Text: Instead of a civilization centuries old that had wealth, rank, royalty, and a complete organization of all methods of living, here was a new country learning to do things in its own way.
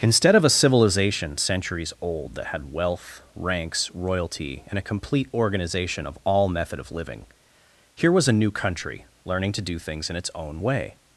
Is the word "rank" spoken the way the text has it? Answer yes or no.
no